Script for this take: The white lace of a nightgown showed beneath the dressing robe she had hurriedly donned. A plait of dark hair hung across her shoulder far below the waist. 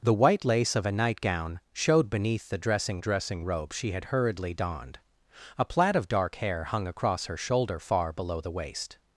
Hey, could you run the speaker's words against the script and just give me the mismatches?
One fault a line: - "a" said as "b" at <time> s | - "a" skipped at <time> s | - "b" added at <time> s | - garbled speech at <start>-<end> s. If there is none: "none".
- "dressing" added at 3.0 s